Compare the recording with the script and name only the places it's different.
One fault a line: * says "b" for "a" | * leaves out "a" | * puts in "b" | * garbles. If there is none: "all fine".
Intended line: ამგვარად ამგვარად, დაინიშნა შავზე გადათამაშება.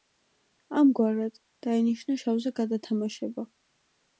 * leaves out "ამგვარად"